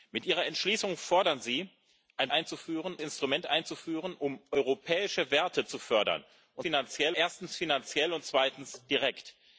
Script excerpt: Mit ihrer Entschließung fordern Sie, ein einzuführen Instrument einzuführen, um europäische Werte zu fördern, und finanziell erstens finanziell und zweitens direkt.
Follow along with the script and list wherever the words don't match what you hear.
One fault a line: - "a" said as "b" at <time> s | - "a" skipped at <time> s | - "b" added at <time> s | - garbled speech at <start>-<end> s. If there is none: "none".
none